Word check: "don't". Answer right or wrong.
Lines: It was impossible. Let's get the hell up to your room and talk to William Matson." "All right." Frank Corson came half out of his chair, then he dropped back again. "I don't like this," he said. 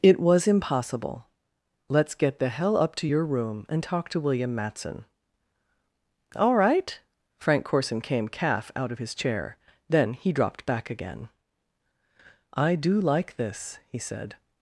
wrong